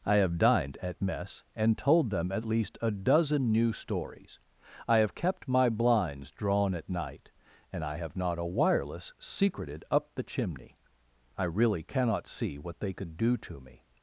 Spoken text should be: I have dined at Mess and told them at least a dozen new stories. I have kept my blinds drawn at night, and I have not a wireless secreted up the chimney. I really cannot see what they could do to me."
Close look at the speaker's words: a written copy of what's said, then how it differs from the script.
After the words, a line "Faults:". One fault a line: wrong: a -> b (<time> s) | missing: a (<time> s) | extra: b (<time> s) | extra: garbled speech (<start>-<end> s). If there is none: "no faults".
I have dined at Mess and told them at least a dozen new stories. I have kept my blinds drawn at night, and I have not a wireless secreted up the chimney. I really cannot see what they could do to me."
Faults:
no faults